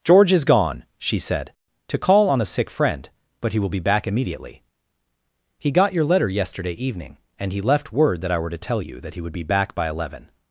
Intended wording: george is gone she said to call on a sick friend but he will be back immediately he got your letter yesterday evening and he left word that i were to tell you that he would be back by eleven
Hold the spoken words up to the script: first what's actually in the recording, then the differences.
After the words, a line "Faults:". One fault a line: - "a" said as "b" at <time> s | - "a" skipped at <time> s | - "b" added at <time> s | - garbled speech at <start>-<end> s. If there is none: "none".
george is gone she said to call on a sick friend but he will be back immediately he got your letter yesterday evening and he left word that i were to tell you that he would be back by eleven
Faults:
none